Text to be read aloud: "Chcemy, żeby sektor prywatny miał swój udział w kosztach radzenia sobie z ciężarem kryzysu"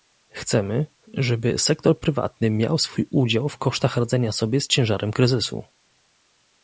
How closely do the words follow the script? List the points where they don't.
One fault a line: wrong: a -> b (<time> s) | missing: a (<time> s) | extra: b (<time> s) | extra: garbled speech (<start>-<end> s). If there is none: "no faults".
no faults